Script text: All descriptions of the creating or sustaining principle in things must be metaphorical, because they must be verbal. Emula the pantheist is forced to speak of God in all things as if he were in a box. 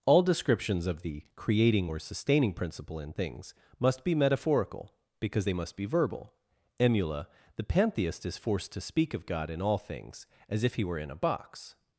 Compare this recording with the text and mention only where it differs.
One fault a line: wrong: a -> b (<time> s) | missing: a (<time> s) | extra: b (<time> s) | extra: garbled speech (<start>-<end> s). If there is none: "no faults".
no faults